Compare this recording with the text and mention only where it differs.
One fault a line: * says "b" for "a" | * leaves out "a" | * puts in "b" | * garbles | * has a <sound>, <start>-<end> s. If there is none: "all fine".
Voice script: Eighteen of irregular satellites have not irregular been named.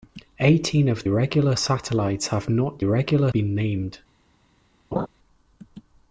* has a laugh, 4.9-5.1 s